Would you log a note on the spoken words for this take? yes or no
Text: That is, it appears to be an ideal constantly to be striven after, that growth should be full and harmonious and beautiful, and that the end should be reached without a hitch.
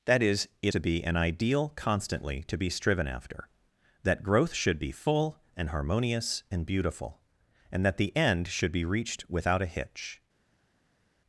yes